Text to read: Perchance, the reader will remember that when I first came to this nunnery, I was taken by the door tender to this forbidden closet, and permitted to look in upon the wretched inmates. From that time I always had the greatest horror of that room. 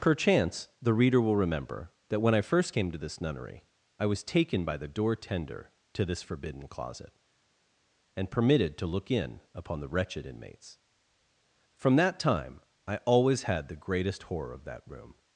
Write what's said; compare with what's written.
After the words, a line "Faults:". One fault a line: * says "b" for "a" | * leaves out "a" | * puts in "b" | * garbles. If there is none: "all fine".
Perchance, the reader will remember that when I first came to this nunnery, I was taken by the door tender to this forbidden closet, and permitted to look in upon the wretched inmates. From that time I always had the greatest horror of that room.
Faults:
all fine